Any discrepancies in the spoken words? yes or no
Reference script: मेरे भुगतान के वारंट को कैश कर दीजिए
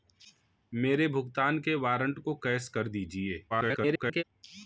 yes